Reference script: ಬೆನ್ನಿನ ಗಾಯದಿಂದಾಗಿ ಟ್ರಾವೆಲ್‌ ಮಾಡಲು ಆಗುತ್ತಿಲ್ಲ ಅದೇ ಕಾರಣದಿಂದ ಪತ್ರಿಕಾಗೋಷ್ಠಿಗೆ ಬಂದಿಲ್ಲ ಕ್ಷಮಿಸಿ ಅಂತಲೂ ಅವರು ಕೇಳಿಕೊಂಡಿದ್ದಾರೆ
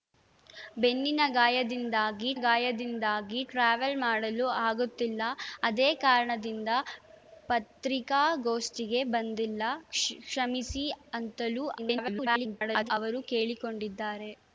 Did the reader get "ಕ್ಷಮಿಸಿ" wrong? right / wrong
right